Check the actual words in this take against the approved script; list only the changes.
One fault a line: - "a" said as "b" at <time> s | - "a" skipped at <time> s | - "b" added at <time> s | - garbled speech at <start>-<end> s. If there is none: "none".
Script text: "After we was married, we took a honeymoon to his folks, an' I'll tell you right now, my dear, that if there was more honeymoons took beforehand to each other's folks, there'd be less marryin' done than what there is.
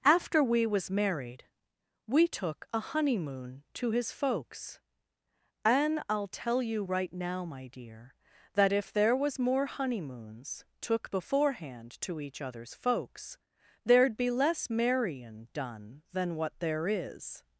none